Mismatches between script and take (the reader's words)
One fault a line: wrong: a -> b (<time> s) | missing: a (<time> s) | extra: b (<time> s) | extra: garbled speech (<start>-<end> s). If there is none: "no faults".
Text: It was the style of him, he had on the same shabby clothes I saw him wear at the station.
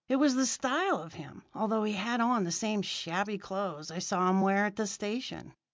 extra: although (1.5 s)